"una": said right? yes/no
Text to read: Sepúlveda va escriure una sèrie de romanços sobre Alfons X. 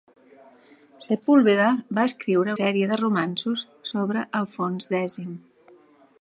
no